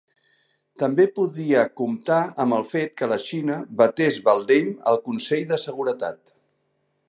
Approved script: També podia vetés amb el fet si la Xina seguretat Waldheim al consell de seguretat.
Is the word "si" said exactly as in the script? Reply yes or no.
no